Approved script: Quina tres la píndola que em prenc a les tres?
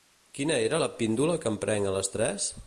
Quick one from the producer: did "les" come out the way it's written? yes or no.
yes